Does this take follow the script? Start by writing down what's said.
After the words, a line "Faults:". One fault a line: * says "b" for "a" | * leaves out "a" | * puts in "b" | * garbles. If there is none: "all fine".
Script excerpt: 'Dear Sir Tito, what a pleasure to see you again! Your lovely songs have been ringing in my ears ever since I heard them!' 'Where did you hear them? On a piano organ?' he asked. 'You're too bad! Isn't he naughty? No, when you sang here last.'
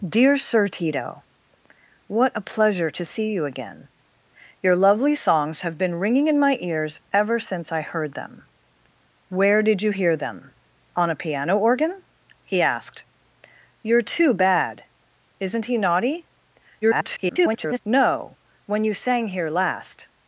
'Dear Sir Tito, what a pleasure to see you again! Your lovely songs have been ringing in my ears ever since I heard them!' 'Where did you hear them? On a piano organ?' he asked. 'You're too bad! Isn't he naughty? [garbled] No, when you sang here last.'
Faults:
* garbles